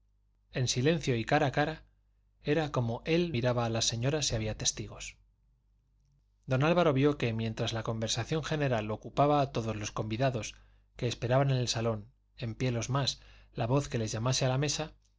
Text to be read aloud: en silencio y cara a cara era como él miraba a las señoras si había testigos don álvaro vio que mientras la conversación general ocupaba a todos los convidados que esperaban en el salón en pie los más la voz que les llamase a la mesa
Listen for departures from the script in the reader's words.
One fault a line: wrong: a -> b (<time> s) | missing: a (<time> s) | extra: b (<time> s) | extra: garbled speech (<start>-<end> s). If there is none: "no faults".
no faults